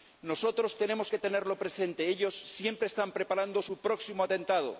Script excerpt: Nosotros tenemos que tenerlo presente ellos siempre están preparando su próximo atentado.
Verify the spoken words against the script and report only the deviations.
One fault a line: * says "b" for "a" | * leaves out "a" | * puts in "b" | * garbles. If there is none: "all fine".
all fine